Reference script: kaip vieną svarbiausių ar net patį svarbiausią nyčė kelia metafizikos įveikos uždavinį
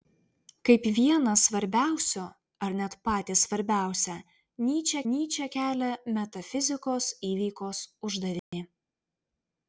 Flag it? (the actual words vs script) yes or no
yes